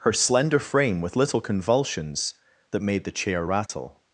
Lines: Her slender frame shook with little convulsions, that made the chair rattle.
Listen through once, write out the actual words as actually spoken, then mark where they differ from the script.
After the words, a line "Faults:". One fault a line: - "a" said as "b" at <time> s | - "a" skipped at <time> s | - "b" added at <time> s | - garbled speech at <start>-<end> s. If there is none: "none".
Her slender frame with little convulsions, that made the chair rattle.
Faults:
- "shook" skipped at 1.0 s